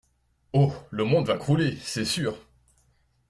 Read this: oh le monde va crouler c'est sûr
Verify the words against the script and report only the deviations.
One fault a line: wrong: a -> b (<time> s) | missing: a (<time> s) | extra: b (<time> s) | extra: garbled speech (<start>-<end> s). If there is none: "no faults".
no faults